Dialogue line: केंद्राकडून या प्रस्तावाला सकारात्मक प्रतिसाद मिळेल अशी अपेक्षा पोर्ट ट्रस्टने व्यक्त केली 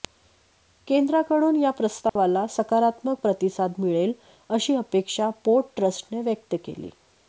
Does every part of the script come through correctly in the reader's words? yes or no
yes